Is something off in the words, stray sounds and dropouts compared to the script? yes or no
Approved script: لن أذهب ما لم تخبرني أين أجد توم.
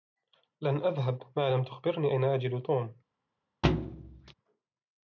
yes